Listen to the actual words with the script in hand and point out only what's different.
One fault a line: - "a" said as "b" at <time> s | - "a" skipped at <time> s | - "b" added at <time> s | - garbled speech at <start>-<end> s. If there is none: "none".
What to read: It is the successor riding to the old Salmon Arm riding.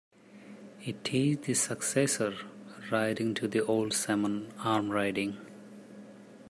none